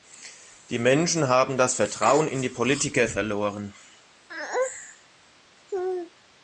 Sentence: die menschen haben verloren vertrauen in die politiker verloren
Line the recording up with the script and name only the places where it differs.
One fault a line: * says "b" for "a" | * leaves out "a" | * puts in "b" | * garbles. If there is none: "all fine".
* says "das" for "verloren"